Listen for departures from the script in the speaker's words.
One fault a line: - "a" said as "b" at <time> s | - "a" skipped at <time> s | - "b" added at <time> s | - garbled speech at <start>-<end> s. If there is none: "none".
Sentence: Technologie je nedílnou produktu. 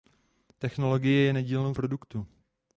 none